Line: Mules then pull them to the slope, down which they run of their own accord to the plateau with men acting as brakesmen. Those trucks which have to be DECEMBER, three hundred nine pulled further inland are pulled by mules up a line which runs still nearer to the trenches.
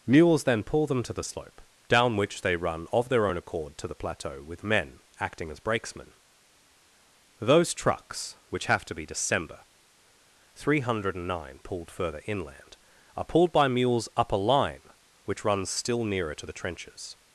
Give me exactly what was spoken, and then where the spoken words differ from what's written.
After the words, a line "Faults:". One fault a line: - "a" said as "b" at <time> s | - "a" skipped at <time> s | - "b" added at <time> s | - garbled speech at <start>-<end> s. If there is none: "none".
Mules then pull them to the slope, down which they run of their own accord to the plateau with men acting as brakesmen. Those trucks which have to be DECEMBER, three hundred nine pulled further inland are pulled by mules up a line which runs still nearer to the trenches.
Faults:
none